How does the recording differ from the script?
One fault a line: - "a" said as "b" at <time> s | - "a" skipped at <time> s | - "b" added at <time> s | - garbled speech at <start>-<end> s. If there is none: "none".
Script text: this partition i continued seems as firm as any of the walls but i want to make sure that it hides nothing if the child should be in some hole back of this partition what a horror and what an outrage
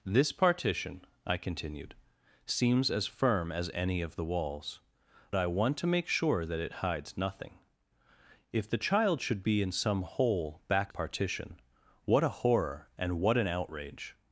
- "but" skipped at 4.8 s
- "of this" skipped at 10.9 s